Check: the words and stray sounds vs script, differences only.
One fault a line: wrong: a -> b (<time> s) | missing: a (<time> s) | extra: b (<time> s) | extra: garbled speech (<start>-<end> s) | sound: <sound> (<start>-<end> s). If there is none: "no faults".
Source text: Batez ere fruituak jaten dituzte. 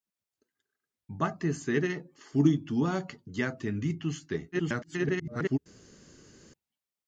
extra: garbled speech (4.5-5.6 s)